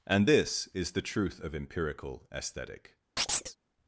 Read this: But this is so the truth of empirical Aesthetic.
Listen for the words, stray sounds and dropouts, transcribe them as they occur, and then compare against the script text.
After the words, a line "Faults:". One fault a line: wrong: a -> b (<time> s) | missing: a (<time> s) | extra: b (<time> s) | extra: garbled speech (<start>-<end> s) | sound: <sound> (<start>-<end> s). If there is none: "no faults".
And this is the truth of empirical Aesthetic.
Faults:
wrong: But -> And (0.1 s)
missing: so (0.9 s)
sound: chirp (3.2-3.6 s)